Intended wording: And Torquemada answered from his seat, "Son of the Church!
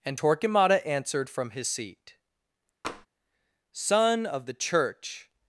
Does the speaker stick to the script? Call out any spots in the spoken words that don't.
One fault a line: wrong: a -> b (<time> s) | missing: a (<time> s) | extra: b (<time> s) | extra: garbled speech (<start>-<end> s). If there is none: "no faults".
no faults